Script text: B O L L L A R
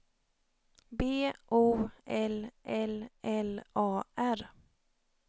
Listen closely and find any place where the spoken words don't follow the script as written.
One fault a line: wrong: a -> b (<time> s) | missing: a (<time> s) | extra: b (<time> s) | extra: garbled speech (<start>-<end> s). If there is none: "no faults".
no faults